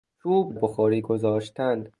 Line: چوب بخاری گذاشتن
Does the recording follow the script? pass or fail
pass